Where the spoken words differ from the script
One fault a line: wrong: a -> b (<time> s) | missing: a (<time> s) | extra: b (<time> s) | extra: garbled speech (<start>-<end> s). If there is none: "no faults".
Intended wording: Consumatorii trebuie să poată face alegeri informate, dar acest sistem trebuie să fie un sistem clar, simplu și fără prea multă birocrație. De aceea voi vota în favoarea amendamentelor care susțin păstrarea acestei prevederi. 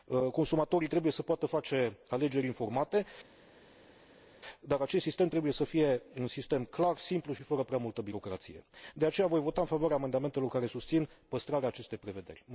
no faults